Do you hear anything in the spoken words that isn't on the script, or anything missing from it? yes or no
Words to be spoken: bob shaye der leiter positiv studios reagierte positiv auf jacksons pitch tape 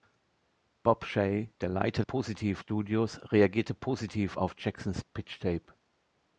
no